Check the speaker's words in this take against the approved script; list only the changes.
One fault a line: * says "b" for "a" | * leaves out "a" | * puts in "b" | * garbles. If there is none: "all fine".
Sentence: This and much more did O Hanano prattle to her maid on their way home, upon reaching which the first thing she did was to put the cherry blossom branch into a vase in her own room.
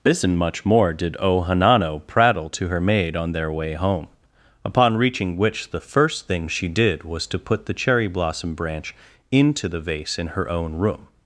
* says "the" for "a"